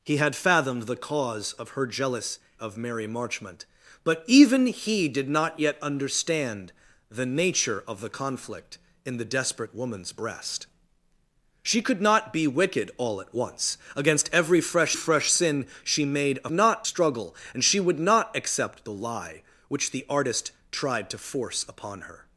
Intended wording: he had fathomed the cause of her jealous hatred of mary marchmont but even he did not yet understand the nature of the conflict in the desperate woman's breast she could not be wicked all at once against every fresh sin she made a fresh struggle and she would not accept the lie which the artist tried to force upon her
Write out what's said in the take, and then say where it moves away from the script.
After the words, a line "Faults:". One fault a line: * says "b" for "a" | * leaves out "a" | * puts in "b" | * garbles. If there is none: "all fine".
he had fathomed the cause of her jealous of mary marchmont but even he did not yet understand the nature of the conflict in the desperate woman's breast she could not be wicked all at once against every fresh fresh sin she made a not struggle and she would not accept the lie which the artist tried to force upon her
Faults:
* leaves out "hatred"
* puts in "fresh"
* says "not" for "fresh"